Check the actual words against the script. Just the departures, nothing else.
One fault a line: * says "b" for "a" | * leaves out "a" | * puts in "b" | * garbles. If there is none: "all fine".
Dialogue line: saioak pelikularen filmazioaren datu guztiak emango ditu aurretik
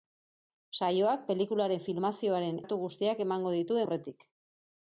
all fine